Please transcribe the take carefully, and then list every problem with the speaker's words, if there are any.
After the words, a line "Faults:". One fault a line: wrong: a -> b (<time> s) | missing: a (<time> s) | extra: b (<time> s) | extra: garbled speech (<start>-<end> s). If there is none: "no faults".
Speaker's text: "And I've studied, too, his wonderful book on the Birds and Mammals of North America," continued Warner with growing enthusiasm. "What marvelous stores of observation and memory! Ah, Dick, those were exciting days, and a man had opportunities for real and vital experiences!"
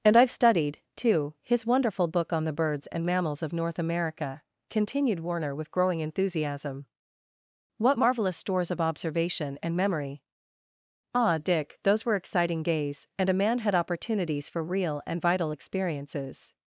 "And I've studied, too, his wonderful book on the Birds and Mammals of North America," continued Warner with growing enthusiasm. "What marvelous stores of observation and memory! Ah, Dick, those were exciting days, and a man had opportunities for real and vital experiences!"
Faults:
no faults